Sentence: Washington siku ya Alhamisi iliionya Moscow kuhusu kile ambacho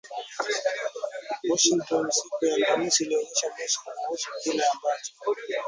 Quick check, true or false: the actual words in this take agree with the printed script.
true